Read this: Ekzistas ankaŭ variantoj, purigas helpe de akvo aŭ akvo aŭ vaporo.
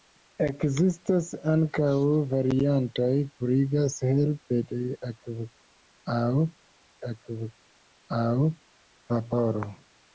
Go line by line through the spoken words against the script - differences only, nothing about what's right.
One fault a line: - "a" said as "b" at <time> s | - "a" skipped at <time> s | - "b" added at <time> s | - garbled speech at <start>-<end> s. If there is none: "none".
none